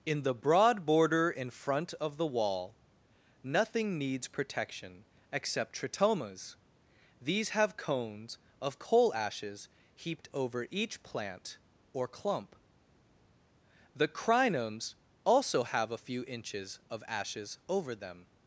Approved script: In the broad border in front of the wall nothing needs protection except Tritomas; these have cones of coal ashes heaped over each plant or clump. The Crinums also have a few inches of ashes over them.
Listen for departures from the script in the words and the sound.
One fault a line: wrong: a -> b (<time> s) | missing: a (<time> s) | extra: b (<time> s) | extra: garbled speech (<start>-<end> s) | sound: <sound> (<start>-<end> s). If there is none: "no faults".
no faults